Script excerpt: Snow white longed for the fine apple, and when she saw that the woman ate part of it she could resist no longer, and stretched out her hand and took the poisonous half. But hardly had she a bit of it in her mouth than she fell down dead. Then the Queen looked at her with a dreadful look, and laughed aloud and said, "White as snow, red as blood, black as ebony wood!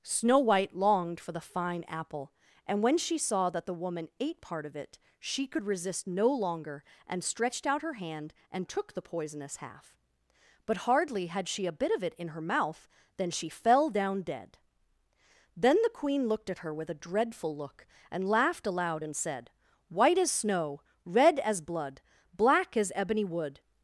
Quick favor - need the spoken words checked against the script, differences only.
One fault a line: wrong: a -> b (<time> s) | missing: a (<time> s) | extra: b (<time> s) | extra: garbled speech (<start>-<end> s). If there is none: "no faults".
no faults